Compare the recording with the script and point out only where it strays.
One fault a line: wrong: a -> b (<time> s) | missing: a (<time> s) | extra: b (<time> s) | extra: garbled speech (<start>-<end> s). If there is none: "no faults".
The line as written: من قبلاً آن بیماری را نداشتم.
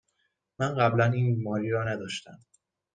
wrong: آن -> این (1.1 s)